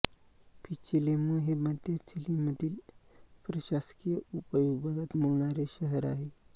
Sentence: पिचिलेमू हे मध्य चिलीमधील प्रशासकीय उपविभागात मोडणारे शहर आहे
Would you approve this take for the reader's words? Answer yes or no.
yes